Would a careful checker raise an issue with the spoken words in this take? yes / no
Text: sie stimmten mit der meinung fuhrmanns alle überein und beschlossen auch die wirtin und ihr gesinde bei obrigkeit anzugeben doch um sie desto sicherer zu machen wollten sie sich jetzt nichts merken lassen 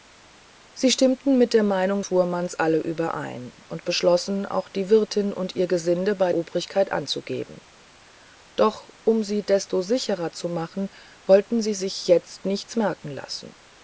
no